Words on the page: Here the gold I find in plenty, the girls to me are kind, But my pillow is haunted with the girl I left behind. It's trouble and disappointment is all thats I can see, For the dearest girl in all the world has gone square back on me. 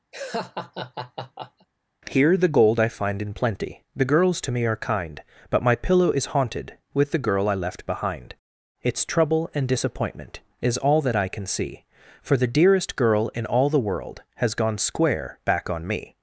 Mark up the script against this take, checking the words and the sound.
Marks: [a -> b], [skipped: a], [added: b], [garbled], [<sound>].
[laugh] Here the gold I find in plenty, the girls to me are kind, But my pillow is haunted with the girl I left behind. It's trouble and disappointment is all [thats -> that] I can see, For the dearest girl in all the world has gone square back on me.